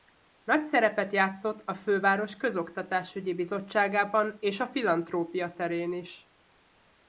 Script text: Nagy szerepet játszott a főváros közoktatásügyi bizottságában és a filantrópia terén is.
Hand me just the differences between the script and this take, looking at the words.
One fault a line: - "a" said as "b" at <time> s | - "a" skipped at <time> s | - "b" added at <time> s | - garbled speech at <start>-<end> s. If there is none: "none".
none